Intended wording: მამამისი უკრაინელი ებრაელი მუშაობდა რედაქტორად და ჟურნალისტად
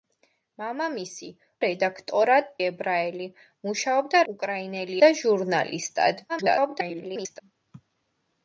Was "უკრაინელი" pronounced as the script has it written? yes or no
no